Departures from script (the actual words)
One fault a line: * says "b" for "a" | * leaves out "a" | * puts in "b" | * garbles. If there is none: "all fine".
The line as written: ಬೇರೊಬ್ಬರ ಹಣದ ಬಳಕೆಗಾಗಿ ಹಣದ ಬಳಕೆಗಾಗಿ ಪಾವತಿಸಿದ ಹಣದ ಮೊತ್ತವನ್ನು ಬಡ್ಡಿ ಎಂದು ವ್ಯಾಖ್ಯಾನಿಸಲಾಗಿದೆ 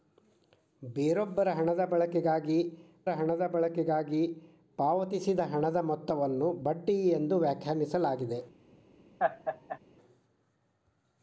all fine